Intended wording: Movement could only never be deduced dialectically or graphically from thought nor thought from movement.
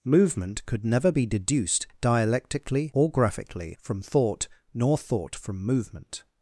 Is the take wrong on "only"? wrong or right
wrong